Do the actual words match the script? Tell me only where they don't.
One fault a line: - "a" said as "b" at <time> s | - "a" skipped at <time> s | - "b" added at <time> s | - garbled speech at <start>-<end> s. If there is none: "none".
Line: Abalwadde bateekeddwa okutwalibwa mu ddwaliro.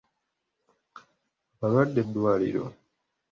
- "bateekeddwa okutwalibwa mu" skipped at 2.0 s